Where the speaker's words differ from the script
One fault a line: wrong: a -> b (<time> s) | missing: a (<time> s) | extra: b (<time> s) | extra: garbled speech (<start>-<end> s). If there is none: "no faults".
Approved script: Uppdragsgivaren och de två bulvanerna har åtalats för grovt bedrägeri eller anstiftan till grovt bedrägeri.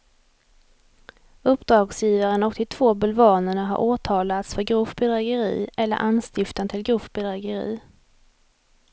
no faults